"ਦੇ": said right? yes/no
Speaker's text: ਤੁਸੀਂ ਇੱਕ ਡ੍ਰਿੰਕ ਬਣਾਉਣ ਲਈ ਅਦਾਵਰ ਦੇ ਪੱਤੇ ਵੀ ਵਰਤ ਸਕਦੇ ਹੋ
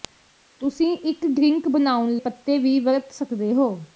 no